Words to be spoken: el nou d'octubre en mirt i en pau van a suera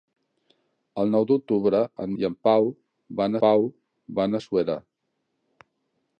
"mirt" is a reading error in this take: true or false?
true